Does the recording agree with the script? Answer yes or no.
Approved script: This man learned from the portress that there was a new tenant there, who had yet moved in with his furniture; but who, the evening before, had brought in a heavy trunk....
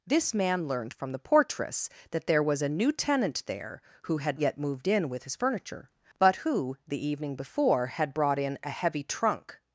yes